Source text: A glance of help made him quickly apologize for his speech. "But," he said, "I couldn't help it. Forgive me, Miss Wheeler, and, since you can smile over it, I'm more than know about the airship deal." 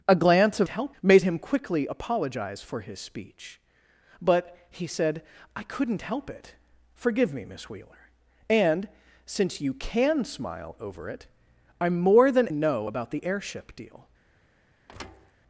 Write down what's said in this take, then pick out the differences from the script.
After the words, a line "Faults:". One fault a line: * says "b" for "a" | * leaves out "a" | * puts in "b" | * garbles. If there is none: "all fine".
A glance of help made him quickly apologize for his speech. "But," he said, "I couldn't help it. Forgive me, Miss Wheeler, and, since you can smile over it, I'm more than know about the airship deal."
Faults:
all fine